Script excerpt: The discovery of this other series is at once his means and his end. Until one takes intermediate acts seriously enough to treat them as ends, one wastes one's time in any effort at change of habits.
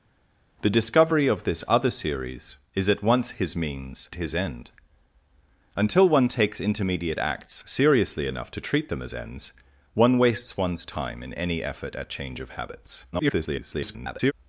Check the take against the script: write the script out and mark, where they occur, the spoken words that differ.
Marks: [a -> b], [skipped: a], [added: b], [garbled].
The discovery of this other series is at once his means [skipped: and] his end. Until one takes intermediate acts seriously enough to treat them as ends, one wastes one's time in any effort at change of habits. [garbled]